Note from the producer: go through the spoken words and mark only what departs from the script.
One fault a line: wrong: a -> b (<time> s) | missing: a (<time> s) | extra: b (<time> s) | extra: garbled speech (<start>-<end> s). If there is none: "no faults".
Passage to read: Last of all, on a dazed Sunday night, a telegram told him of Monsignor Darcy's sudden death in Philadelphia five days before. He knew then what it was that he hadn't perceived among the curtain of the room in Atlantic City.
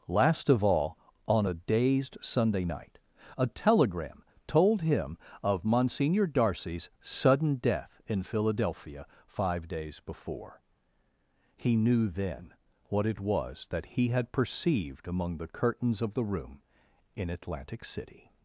wrong: hadn't -> had (14.1 s)
wrong: curtain -> curtains (15.5 s)